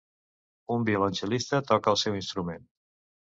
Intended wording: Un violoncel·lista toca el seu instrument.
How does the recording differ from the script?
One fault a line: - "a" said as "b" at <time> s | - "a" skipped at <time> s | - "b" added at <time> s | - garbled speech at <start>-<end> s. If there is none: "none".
none